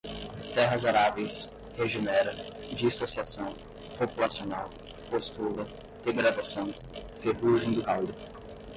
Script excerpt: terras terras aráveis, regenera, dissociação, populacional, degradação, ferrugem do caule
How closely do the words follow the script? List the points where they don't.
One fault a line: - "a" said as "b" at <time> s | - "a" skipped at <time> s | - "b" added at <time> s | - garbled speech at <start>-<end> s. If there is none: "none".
- "terras" skipped at 0.8 s
- "postula" added at 5.1 s